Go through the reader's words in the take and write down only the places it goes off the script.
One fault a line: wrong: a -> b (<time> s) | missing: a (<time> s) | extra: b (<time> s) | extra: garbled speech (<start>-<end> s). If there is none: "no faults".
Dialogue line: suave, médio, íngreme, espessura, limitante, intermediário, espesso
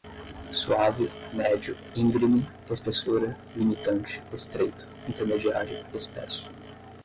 extra: estreito (4.3 s)